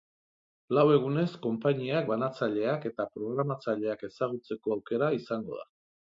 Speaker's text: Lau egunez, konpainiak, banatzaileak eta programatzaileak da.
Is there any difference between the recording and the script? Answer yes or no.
yes